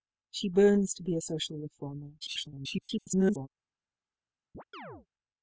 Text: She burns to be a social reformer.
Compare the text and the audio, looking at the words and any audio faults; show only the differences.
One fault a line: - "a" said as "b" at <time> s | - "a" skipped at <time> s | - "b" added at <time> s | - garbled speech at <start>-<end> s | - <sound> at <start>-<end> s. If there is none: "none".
- garbled speech at 2.2-3.5 s
- chirp at 4.5-5.1 s